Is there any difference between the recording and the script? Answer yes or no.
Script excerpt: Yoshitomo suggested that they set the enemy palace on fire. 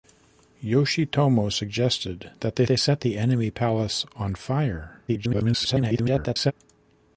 yes